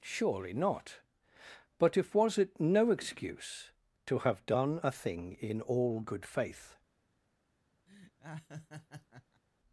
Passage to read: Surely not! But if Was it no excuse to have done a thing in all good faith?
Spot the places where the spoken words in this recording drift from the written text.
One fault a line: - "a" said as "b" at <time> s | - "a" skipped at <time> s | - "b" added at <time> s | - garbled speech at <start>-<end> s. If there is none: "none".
none